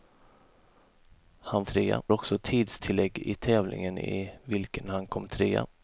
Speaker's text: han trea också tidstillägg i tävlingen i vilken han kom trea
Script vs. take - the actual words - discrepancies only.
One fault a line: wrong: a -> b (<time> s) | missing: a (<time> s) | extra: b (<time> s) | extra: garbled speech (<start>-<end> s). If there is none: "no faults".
no faults